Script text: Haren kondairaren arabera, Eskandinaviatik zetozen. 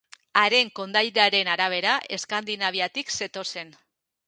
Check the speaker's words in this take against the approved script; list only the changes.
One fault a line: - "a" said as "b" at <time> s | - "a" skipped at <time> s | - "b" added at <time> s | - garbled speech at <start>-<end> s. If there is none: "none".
none